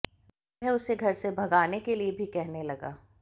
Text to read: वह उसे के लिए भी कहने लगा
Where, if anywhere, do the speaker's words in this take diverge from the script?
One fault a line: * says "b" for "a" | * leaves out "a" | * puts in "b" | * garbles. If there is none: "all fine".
* puts in "घर से भगाने"